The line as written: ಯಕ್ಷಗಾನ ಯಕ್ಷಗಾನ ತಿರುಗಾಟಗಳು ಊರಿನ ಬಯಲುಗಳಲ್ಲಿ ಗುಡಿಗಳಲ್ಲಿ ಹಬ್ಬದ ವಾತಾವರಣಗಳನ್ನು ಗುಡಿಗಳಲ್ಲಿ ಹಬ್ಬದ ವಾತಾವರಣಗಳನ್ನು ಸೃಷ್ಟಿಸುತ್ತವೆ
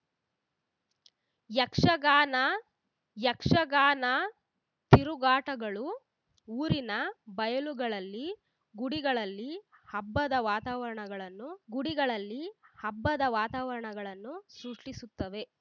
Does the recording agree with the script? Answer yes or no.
yes